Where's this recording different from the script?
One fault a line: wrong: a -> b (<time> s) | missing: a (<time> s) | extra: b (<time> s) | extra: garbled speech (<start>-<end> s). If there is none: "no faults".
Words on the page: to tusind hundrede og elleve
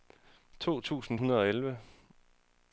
no faults